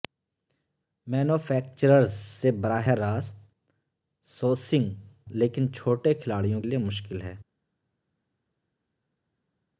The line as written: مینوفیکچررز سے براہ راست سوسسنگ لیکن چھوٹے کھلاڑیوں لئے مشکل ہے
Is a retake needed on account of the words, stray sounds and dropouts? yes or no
no